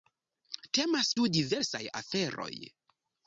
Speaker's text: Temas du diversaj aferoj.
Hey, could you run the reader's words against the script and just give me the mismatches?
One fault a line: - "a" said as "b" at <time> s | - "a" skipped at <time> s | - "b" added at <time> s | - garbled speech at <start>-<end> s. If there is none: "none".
none